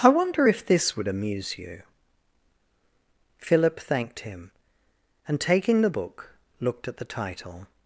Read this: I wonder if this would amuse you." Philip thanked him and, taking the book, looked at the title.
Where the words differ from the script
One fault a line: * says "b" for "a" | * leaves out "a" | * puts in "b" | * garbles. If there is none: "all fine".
all fine